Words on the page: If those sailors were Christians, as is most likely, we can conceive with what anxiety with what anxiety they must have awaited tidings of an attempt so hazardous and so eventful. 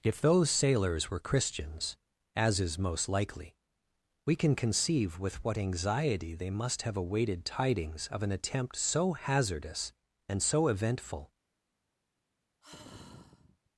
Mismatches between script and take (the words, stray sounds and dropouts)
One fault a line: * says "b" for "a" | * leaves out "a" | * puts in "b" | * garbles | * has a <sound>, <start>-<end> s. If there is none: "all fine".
* leaves out "with what anxiety"
* has a sigh, 12.6-13.7 s